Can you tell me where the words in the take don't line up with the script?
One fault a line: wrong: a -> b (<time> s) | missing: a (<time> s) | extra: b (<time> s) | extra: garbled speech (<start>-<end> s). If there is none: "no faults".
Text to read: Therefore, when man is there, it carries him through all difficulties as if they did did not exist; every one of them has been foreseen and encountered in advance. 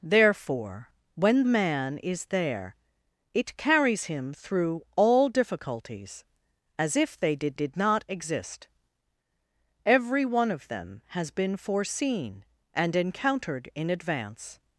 no faults